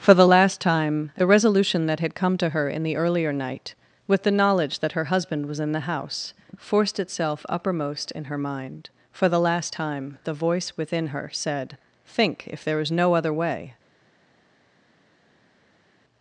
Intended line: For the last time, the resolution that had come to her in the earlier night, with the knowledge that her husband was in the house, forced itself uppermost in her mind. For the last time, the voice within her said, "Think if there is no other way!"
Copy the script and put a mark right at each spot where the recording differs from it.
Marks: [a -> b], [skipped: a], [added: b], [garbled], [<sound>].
For the last time, the resolution that had come to her in the earlier night, with the knowledge that her husband was in the house, forced itself uppermost in her mind. For the last time, the voice within her said, "Think if there is no other way!"